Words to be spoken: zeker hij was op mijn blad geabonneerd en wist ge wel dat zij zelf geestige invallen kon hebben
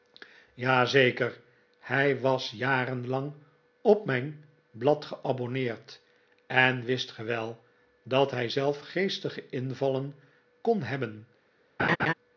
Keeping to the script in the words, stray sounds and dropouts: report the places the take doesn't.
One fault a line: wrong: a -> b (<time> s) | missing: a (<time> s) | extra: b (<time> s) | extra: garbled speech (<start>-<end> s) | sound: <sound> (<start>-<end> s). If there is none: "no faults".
extra: jarenlang (2.5 s)
wrong: zij -> hij (8.3 s)
sound: laugh (11.8-12.1 s)